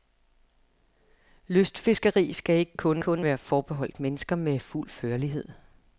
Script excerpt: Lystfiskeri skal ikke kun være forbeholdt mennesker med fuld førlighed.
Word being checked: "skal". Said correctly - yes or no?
yes